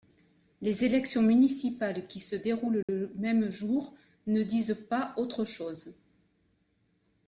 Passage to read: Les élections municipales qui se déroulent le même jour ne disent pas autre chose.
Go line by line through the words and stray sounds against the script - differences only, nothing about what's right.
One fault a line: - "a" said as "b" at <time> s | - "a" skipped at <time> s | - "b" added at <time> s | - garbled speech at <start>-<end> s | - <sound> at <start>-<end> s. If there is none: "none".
- dropout at 2.8-2.9 s